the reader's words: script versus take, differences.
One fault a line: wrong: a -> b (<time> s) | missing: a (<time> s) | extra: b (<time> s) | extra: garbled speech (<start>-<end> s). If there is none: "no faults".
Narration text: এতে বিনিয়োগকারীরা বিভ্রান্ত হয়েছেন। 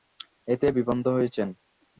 missing: বিনিয়োগকারীরা (0.7 s)